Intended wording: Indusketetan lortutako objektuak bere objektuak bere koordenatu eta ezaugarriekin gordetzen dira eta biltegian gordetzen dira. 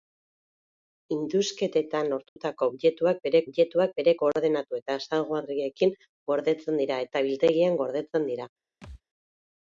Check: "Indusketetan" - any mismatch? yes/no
no